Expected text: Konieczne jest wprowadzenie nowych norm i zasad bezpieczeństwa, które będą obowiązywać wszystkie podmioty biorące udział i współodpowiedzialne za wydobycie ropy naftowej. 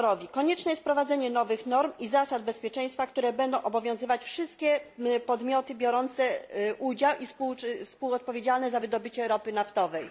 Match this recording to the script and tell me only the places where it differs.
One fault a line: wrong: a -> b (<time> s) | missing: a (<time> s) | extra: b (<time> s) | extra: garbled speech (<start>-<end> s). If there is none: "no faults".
no faults